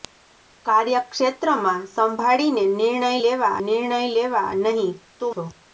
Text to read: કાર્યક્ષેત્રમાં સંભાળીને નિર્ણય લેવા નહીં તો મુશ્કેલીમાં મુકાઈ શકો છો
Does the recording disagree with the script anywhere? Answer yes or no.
yes